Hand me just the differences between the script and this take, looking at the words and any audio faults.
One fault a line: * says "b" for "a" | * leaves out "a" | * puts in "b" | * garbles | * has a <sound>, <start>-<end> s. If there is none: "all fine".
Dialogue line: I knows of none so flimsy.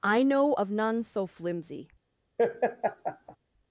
* says "know" for "knows"
* has a laugh, 2.4-3.4 s